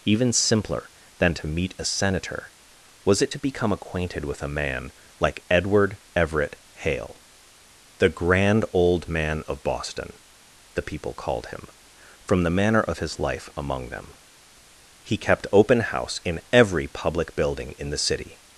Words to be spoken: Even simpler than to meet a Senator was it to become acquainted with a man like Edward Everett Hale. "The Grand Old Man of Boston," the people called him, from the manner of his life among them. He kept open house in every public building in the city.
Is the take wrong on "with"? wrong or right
right